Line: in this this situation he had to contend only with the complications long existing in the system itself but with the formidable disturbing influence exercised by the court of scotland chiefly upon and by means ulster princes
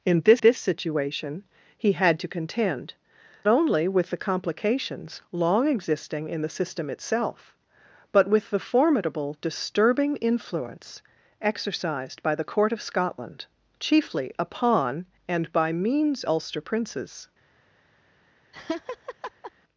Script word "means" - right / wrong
right